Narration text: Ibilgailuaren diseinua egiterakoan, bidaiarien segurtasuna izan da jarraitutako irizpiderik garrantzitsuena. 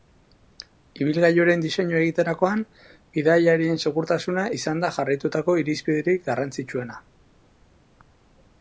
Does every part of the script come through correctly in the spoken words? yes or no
yes